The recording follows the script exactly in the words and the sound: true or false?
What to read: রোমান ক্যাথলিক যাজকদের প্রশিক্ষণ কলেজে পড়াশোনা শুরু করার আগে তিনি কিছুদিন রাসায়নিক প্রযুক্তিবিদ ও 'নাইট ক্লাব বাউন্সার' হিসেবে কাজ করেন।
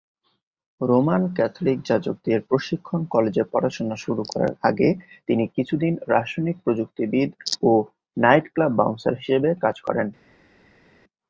true